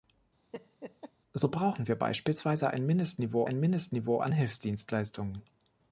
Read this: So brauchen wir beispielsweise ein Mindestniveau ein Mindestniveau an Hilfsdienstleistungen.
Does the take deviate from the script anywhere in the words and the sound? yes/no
yes